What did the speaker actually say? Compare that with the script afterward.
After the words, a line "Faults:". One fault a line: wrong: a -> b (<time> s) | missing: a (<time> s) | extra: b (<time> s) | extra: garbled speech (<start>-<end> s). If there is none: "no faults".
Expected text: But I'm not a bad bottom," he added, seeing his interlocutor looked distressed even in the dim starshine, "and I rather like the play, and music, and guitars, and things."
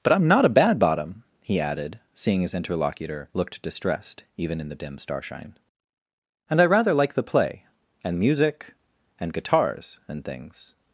But I'm not a bad bottom," he added, seeing his interlocutor looked distressed even in the dim starshine, "and I rather like the play, and music, and guitars, and things."
Faults:
no faults